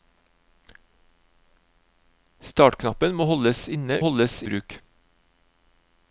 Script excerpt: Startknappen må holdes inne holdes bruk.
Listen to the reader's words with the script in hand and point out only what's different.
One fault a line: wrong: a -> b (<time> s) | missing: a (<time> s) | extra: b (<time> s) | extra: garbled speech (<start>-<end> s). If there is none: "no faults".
no faults